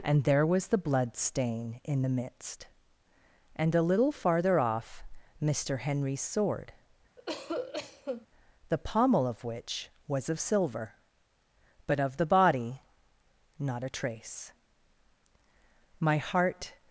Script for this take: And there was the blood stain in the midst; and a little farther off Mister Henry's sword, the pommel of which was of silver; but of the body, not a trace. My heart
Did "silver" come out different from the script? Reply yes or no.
no